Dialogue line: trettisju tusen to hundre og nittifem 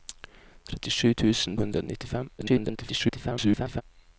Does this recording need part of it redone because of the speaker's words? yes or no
yes